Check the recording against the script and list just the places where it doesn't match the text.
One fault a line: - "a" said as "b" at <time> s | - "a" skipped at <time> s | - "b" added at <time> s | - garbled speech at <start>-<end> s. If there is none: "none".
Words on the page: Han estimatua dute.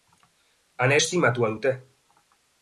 none